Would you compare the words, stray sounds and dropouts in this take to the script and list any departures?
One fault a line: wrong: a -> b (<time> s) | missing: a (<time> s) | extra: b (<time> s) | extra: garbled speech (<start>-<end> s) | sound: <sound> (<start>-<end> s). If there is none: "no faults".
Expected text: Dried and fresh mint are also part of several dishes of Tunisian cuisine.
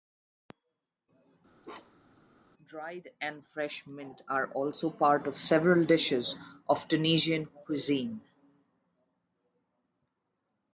sound: bark (1.6-2.2 s)